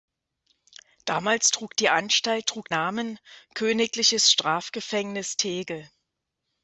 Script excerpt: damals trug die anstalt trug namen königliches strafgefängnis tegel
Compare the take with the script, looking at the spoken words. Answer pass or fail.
pass